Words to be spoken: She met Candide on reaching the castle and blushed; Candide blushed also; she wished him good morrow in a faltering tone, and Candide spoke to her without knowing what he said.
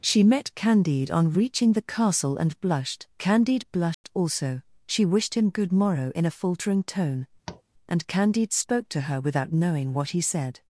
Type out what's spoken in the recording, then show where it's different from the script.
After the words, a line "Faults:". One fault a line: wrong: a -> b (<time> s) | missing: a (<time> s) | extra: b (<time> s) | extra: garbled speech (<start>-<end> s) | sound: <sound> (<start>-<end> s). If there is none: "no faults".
She met Candide on reaching the castle and blushed; Candide blushed also; she wished him good morrow in a faltering tone, and Candide spoke to her without knowing what he said.
Faults:
sound: dropout (3.9-4.0 s)
sound: tap (7.5-7.6 s)